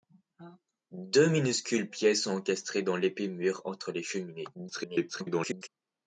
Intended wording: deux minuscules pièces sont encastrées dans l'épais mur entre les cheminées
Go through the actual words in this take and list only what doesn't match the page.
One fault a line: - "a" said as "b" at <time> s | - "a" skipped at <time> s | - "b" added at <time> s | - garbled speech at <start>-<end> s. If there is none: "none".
- garbled speech at 4.5-5.7 s